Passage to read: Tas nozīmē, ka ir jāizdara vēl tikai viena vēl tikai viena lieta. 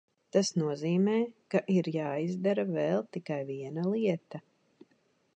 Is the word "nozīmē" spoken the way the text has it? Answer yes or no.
yes